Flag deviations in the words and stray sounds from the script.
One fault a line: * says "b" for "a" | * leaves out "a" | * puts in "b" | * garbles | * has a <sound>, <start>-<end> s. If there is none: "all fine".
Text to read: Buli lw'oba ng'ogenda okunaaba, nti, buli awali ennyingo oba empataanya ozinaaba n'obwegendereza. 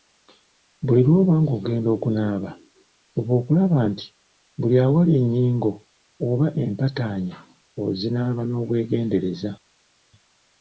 * puts in "fuba okulaba"